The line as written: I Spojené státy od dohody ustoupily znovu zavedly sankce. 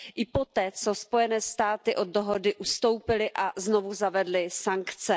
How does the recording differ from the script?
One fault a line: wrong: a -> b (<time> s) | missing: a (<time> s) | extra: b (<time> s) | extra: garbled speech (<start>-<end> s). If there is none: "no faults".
extra: poté co (0.2 s)
extra: a (3.3 s)